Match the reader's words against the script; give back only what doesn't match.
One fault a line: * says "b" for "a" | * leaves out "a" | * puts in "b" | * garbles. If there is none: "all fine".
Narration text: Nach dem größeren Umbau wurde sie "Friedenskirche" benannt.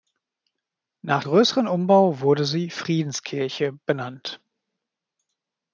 * leaves out "dem"